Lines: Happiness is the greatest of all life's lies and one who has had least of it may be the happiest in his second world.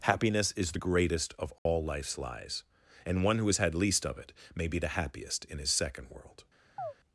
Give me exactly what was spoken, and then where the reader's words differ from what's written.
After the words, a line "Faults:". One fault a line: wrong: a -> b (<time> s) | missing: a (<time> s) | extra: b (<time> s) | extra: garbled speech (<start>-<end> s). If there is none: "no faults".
Happiness is the greatest of all life's lies and one who has had least of it may be the happiest in his second world.
Faults:
no faults